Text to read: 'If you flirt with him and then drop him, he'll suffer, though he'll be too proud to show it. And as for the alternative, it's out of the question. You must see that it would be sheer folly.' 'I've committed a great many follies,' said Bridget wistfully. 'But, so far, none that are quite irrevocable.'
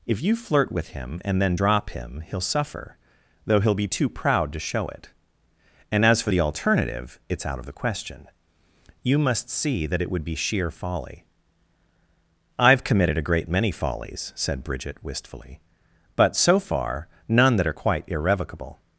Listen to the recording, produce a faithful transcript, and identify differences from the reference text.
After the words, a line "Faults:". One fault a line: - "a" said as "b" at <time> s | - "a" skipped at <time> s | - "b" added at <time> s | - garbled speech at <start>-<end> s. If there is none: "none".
'If you flirt with him and then drop him, he'll suffer, though he'll be too proud to show it. And as for the alternative, it's out of the question. You must see that it would be sheer folly.' 'I've committed a great many follies,' said Bridget wistfully. 'But, so far, none that are quite irrevocable.'
Faults:
none